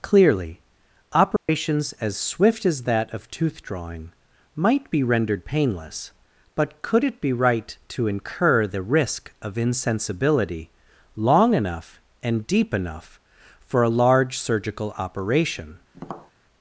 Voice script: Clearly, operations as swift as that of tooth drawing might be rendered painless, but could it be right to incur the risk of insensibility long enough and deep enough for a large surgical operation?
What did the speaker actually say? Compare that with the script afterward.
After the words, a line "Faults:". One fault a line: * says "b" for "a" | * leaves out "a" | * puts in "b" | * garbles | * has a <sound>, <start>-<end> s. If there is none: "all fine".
Clearly, operations as swift as that of tooth drawing might be rendered painless, but could it be right to incur the risk of insensibility long enough and deep enough for a large surgical operation?
Faults:
* has a dropout, 1.4-1.5 s
* has a tap, 15.9-16.3 s